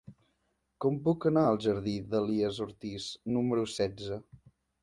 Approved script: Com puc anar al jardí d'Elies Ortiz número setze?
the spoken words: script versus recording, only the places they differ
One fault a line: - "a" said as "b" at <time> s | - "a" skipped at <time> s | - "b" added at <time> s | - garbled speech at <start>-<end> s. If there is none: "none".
none